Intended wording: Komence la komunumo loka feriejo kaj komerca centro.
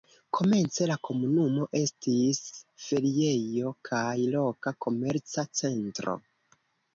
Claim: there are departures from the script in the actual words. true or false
true